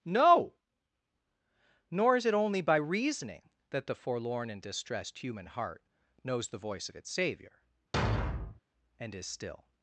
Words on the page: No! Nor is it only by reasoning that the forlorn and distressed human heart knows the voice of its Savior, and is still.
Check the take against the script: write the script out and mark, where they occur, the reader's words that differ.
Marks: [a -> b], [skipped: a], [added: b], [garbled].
No! Nor is it only by reasoning that the forlorn and distressed human heart knows the voice of its Savior, and is still.